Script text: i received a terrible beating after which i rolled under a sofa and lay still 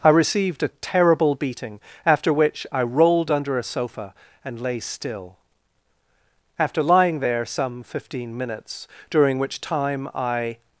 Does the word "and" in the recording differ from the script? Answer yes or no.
no